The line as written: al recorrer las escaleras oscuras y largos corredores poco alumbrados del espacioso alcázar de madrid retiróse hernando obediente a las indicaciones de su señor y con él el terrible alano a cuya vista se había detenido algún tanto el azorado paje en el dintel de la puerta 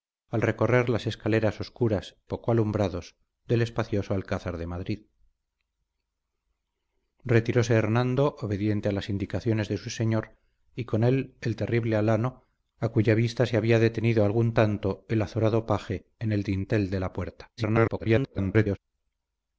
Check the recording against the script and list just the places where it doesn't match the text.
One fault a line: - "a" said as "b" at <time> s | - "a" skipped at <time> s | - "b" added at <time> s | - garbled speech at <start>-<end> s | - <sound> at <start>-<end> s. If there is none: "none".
- "y largos corredores" skipped at 2.2 s
- garbled speech at 17.6-18.8 s